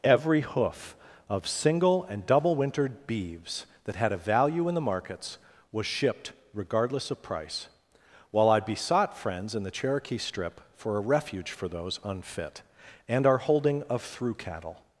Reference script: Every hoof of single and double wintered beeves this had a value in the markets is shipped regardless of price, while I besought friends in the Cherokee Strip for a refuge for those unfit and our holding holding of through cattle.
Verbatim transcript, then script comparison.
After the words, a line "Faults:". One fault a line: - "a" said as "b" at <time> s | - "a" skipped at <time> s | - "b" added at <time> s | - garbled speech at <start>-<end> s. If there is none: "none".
Every hoof of single and double wintered beeves that had a value in the markets was shipped regardless of price, while I besought friends in the Cherokee Strip for a refuge for those unfit and our holding of through cattle.
Faults:
- "this" said as "that" at 3.9 s
- "is" said as "was" at 5.7 s
- "holding" skipped at 13.8 s